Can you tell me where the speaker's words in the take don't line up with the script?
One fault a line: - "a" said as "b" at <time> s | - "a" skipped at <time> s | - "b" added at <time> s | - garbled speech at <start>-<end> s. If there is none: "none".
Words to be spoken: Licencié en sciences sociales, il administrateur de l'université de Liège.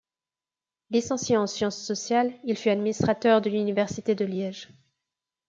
- "fut" added at 2.6 s